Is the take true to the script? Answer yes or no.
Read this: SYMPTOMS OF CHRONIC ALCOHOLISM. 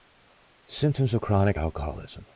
yes